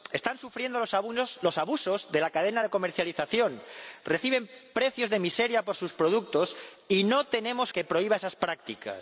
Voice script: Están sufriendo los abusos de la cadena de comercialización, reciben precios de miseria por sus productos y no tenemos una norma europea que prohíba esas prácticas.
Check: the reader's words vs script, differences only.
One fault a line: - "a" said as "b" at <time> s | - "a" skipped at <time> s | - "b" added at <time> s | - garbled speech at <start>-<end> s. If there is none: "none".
- "una norma europea" skipped at 7.7 s